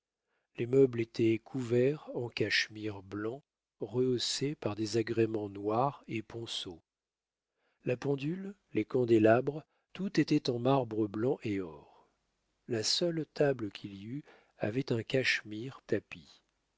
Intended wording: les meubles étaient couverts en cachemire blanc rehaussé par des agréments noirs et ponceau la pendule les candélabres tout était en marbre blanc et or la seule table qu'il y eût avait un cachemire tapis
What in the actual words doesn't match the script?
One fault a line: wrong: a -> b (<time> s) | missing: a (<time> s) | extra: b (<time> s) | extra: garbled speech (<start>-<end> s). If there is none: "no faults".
no faults